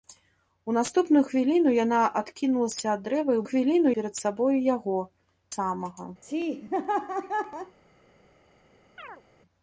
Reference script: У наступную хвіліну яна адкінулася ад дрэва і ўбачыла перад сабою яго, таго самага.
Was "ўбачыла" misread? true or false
true